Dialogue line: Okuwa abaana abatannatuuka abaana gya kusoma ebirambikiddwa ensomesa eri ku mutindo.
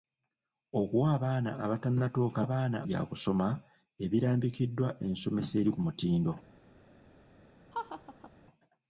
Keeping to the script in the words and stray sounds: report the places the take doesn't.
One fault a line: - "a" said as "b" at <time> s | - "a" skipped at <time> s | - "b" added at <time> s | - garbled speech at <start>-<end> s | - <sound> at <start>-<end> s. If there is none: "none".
- laugh at 7.7-8.3 s